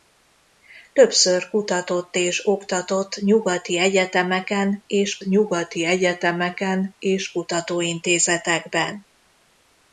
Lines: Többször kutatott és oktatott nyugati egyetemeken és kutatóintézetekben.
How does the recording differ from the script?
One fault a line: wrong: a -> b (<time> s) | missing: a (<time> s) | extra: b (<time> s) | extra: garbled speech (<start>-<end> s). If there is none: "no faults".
extra: nyugati egyetemeken és (5.2 s)